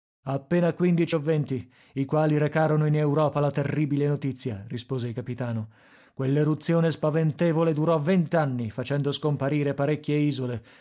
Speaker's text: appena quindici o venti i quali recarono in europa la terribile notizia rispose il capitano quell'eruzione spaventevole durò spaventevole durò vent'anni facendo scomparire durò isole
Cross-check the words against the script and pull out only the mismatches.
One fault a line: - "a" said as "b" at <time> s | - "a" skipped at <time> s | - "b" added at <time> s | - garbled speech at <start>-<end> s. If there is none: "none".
- "spaventevole durò" skipped at 8.0 s
- "durò" said as "parecchie" at 9.7 s